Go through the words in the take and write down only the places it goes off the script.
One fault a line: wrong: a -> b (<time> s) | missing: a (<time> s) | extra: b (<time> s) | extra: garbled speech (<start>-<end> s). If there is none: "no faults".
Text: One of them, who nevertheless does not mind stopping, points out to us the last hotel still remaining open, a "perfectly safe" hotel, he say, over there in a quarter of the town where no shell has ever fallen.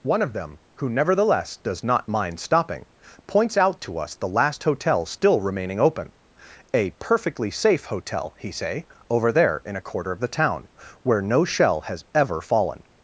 no faults